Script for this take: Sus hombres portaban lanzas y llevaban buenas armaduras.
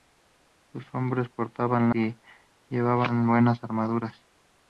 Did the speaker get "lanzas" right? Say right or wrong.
wrong